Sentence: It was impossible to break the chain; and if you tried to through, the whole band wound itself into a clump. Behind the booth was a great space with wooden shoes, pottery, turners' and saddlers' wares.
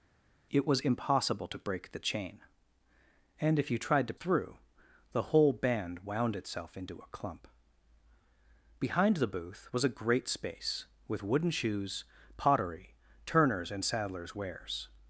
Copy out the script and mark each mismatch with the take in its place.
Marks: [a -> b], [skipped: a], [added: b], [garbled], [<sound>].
It was impossible to break the chain; and if you tried to through, the whole band wound itself into a clump. Behind the booth was a great space with wooden shoes, pottery, turners' and saddlers' wares.